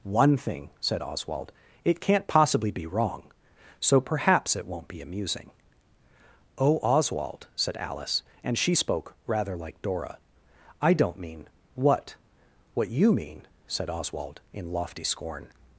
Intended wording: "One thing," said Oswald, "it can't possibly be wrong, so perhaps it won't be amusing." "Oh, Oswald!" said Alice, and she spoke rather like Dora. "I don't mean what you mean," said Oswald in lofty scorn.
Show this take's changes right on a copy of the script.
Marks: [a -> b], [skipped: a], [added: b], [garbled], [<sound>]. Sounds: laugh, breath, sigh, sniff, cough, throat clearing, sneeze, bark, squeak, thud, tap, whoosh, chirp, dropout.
"One thing," said Oswald, "it can't possibly be wrong, so perhaps it won't be amusing." "Oh, Oswald!" said Alice, and she spoke rather like Dora. "I don't mean what [added: what] you mean," said Oswald in lofty scorn.